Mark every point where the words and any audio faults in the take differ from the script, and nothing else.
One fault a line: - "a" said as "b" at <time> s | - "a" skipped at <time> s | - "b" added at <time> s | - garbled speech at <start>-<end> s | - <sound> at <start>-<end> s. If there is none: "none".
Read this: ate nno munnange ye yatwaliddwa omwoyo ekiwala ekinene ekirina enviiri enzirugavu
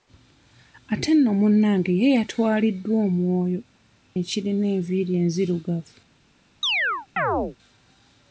- "ekiwala ekinene" skipped at 3.6 s
- chirp at 6.6-7.6 s